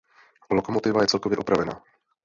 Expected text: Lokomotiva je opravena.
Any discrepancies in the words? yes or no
yes